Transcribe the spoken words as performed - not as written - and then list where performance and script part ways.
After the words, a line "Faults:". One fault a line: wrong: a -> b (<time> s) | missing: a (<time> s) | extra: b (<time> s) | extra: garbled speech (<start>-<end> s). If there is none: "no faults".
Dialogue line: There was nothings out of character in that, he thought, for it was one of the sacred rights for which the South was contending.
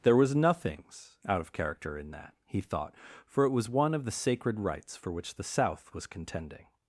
There was nothings out of character in that, he thought, for it was one of the sacred rights for which the South was contending.
Faults:
no faults